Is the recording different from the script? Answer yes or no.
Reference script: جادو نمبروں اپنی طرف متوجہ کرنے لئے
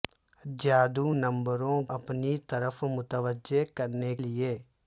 no